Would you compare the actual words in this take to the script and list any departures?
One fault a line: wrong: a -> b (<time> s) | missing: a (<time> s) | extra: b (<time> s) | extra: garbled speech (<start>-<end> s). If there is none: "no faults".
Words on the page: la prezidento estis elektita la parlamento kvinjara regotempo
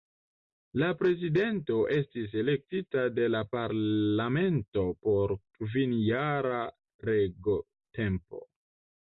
extra: de (3.2 s)
extra: por (5.1 s)